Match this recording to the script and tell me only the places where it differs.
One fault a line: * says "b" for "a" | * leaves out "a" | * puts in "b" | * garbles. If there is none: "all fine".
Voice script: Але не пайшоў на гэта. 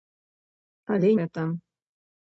* leaves out "не пайшоў на"